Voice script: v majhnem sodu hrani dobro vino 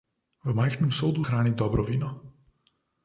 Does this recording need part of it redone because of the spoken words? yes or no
no